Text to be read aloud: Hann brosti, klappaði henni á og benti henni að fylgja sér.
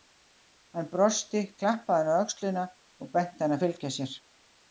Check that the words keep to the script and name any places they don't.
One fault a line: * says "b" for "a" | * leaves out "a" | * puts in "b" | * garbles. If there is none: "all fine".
* puts in "öxlina"